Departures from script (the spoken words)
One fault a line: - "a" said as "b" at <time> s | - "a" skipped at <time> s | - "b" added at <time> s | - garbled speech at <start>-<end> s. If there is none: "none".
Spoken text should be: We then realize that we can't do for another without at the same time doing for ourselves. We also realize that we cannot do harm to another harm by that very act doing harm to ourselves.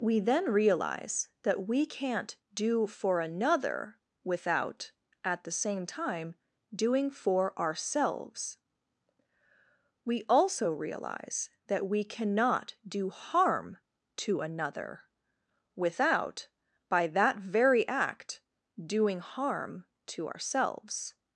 - "harm" said as "without" at 15.8 s